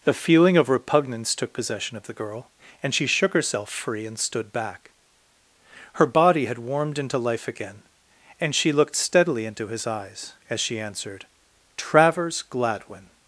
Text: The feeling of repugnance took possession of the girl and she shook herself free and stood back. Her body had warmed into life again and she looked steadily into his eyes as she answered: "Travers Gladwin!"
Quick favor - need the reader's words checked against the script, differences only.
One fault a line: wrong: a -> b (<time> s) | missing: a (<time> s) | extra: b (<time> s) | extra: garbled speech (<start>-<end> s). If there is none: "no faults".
no faults